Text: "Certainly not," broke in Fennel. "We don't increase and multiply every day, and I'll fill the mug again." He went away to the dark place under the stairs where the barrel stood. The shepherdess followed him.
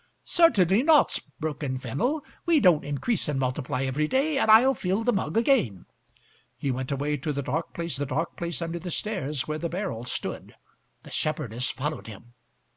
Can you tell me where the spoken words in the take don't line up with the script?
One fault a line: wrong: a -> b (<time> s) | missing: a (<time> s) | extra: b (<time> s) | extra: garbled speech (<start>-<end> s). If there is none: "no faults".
extra: the dark place (7.9 s)